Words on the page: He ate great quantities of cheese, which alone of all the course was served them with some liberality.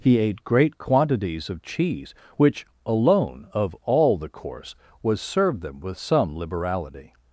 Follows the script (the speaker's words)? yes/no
yes